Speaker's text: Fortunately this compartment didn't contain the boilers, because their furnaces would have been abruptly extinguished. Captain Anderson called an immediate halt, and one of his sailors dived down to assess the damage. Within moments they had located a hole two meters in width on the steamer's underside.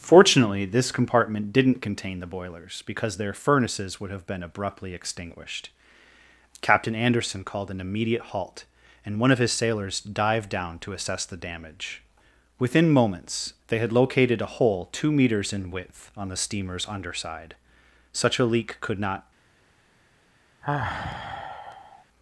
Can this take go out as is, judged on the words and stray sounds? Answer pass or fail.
fail